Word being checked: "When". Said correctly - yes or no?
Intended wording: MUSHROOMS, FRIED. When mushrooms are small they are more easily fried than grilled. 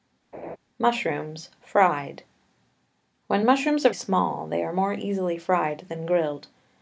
yes